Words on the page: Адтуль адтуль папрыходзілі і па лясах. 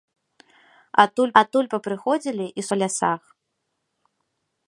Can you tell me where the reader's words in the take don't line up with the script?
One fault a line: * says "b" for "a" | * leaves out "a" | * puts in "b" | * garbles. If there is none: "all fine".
all fine